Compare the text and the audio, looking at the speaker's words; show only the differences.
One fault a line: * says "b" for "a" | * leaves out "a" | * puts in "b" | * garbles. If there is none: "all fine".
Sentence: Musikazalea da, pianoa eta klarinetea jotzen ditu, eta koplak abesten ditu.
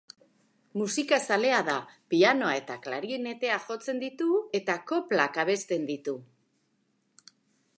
all fine